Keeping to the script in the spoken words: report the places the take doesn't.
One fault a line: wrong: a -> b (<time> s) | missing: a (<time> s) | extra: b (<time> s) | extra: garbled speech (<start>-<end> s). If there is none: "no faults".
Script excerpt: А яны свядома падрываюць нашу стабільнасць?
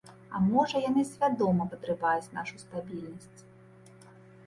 extra: можа (0.5 s)